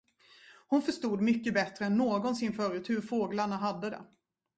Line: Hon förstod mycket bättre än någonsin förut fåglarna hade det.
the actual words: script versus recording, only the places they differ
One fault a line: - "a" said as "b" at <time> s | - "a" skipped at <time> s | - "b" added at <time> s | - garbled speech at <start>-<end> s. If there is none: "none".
- "hur" added at 2.9 s